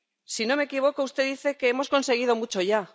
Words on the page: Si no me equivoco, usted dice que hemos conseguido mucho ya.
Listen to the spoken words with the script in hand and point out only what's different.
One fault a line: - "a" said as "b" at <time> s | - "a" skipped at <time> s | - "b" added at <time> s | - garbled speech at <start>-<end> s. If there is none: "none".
none